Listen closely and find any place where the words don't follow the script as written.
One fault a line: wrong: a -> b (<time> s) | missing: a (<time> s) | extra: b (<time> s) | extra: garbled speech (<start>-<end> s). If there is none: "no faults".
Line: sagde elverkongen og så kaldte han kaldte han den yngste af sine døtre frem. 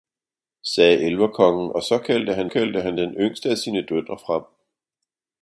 no faults